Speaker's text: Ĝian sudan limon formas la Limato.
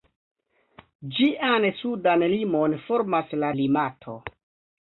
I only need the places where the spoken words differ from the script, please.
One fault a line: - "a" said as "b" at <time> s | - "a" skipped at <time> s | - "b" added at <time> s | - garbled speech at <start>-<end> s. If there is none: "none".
none